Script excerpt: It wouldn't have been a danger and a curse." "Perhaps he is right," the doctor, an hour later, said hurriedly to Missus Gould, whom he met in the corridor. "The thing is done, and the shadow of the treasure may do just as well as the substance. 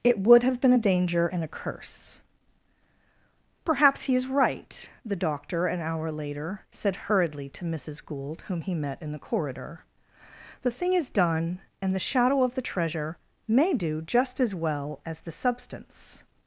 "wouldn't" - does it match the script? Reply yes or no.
no